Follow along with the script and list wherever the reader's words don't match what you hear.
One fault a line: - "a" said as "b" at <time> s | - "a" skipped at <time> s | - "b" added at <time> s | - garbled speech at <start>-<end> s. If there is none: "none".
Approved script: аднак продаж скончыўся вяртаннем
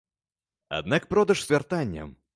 - "скончыўся" skipped at 1.4 s